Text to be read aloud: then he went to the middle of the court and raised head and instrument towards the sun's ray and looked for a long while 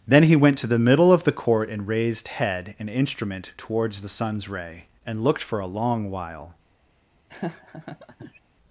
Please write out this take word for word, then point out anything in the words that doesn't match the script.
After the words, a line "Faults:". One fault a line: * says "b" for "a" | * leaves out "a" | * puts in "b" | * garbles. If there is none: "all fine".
then he went to the middle of the court and raised head and instrument towards the sun's ray and looked for a long while
Faults:
all fine